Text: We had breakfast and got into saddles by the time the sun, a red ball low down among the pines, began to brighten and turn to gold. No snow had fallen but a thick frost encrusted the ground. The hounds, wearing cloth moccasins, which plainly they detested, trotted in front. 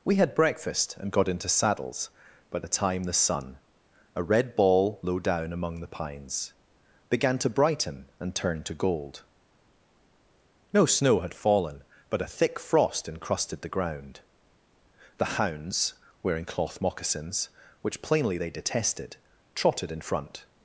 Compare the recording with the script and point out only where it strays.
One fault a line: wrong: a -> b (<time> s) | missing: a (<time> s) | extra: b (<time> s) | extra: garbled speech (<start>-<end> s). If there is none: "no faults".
no faults